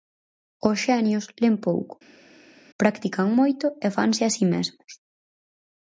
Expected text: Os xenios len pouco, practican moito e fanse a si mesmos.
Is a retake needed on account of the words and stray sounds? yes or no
no